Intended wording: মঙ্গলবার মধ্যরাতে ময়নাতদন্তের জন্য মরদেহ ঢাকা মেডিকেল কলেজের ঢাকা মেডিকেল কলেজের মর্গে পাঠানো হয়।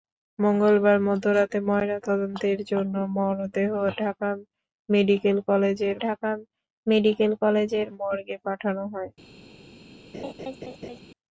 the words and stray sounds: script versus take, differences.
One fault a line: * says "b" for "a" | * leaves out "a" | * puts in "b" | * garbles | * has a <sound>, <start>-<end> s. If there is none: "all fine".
* has a laugh, 10.1-11.0 s